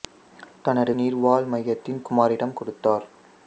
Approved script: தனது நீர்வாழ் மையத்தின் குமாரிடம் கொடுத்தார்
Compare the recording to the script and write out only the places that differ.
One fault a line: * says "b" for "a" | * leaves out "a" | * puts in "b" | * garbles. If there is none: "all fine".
all fine